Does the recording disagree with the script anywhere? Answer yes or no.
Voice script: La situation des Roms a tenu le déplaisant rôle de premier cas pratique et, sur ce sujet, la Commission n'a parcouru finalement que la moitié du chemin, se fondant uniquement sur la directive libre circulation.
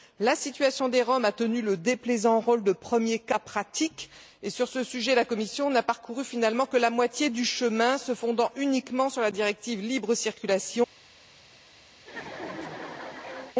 no